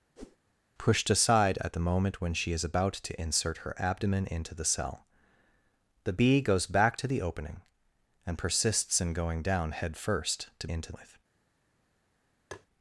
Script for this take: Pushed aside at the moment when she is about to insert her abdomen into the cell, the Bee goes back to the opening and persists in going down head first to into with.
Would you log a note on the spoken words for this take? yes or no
no